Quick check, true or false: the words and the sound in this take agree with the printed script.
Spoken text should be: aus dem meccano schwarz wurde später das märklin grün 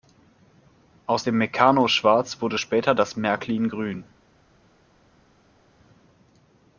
true